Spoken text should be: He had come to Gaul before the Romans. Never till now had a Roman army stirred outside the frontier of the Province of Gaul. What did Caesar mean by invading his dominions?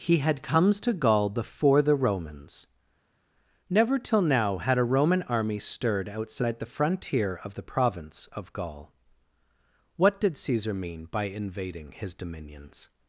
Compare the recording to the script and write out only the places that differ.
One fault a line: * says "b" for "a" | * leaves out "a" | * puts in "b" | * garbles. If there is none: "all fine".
* says "comes" for "come"